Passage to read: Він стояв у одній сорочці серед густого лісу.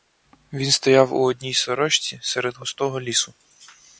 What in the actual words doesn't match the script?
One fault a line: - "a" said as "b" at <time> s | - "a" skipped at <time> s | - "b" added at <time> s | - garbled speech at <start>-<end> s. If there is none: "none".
none